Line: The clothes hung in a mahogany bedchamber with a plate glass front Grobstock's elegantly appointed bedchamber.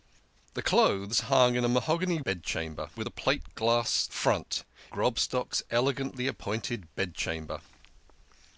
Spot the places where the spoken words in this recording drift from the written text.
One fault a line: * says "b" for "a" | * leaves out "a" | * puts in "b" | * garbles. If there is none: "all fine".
all fine